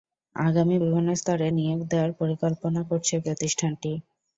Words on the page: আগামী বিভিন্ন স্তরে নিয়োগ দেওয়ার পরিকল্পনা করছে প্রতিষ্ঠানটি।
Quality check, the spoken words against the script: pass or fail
pass